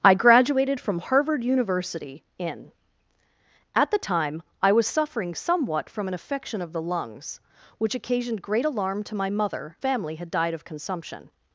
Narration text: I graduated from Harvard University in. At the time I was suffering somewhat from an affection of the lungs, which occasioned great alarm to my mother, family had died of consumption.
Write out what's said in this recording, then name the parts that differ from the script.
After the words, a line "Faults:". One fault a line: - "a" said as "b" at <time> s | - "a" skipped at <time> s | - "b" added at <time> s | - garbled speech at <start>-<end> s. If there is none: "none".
I graduated from Harvard University in. At the time I was suffering somewhat from an affection of the lungs, which occasioned great alarm to my mother, family had died of consumption.
Faults:
none